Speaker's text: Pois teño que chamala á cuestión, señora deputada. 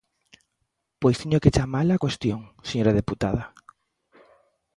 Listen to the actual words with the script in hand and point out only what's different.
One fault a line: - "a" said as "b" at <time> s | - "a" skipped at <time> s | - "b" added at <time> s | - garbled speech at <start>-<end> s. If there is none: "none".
none